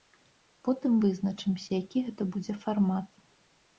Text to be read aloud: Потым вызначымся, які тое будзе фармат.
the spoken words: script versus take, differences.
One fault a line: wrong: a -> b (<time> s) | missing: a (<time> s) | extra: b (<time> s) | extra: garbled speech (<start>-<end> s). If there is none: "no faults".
wrong: тое -> гэта (2.1 s)